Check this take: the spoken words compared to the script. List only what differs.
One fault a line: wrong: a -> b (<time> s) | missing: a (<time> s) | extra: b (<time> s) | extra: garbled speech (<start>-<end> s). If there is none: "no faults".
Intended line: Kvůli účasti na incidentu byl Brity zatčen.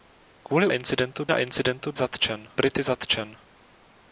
wrong: účasti -> incidentu (0.7 s)
wrong: byl -> zatčen (1.9 s)